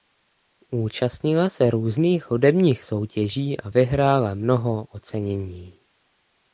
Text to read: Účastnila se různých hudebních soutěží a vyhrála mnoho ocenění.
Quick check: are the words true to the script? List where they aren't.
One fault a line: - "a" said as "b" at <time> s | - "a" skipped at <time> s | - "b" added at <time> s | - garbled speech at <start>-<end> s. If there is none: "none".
none